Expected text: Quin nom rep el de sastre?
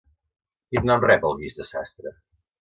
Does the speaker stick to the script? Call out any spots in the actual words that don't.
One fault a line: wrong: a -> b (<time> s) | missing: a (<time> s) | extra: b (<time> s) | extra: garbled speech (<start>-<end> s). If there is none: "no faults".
extra: guix (1.4 s)